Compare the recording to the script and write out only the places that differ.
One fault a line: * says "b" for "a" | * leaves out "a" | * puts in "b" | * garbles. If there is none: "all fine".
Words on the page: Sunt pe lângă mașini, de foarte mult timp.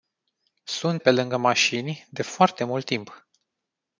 all fine